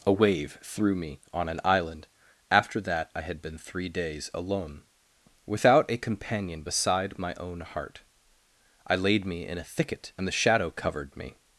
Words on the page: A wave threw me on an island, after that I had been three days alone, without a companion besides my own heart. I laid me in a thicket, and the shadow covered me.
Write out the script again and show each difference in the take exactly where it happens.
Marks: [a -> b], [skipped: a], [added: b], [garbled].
A wave threw me on an island, after that I had been three days alone, without a companion [besides -> beside] my own heart. I laid me in a thicket, and the shadow covered me.